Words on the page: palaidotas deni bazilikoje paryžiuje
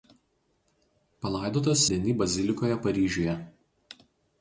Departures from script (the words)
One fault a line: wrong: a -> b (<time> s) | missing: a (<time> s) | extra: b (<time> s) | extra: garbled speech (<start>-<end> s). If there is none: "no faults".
no faults